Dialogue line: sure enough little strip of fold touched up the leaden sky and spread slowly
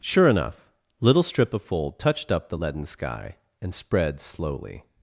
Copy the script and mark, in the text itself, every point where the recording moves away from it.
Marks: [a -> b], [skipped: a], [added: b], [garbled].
sure enough little strip of fold touched up the leaden sky and spread slowly